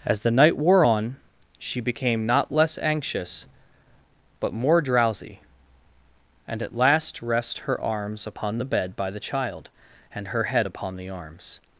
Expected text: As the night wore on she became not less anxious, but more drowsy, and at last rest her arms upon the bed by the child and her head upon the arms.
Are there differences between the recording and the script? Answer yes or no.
no